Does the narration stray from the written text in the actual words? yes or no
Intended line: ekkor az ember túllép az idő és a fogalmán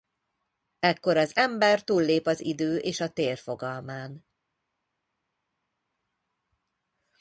yes